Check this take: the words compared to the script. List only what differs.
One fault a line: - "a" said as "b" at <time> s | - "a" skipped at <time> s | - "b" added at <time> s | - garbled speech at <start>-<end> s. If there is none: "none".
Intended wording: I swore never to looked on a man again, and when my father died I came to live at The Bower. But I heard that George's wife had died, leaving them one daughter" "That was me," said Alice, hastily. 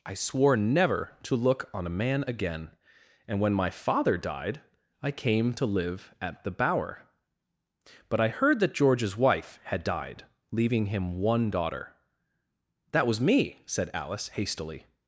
- "looked" said as "look" at 1.4 s
- "them" said as "him" at 10.9 s